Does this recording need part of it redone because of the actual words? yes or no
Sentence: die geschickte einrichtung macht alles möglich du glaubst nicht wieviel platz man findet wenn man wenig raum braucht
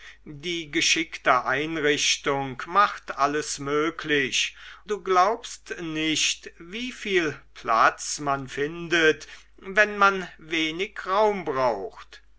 no